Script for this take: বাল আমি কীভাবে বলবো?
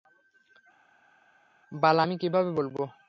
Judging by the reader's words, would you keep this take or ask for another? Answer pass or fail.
pass